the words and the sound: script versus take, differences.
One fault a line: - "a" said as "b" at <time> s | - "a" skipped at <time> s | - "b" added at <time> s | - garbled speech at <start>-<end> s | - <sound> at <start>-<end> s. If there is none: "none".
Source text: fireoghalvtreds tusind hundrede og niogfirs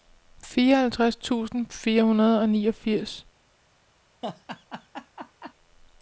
- "fire" added at 1.7 s
- laugh at 4.2-5.5 s